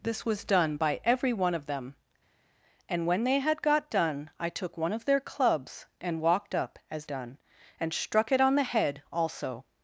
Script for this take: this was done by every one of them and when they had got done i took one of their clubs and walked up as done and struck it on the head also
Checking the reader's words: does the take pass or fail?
pass